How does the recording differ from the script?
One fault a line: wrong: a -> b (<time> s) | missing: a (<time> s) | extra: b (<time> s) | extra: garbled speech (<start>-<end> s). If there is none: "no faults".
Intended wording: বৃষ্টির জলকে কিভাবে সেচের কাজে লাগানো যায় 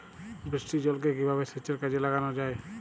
no faults